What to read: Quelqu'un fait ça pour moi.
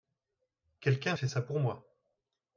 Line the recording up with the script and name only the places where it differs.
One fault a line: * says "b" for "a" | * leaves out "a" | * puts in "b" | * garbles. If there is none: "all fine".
all fine